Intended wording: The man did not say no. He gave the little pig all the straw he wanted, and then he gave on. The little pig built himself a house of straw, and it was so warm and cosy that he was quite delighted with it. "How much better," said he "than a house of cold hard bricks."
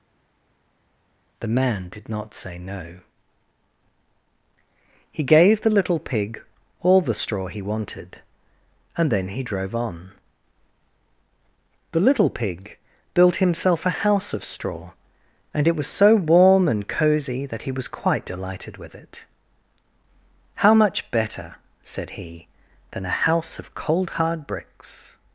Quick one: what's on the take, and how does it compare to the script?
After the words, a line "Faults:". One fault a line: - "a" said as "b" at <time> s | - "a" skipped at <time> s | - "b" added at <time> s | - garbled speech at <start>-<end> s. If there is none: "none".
The man did not say no. He gave the little pig all the straw he wanted, and then he drove on. The little pig built himself a house of straw, and it was so warm and cosy that he was quite delighted with it. "How much better," said he "than a house of cold hard bricks."
Faults:
- "gave" said as "drove" at 9.4 s